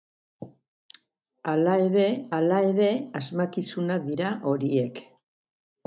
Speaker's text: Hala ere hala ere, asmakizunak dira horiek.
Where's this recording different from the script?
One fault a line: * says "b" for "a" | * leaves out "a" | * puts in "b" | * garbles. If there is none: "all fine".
all fine